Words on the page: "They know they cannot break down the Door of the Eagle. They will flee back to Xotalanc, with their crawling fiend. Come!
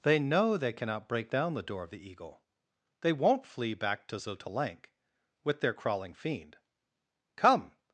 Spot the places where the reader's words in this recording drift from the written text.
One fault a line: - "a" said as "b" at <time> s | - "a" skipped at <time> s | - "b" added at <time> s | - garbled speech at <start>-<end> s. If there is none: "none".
- "will" said as "won't" at 3.1 s